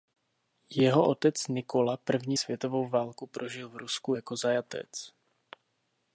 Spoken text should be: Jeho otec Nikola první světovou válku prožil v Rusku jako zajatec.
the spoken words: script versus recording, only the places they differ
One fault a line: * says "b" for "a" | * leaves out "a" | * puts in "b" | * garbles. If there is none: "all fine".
all fine